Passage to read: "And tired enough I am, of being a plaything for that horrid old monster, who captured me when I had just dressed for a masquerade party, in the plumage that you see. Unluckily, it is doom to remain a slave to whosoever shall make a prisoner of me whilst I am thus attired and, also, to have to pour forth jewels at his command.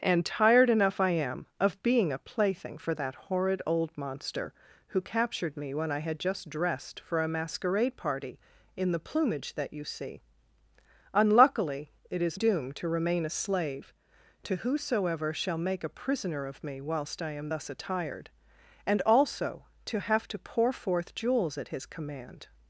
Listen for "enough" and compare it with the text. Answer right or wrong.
right